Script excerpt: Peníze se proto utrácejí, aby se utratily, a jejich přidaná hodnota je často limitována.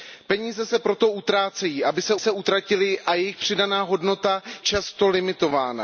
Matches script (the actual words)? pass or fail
fail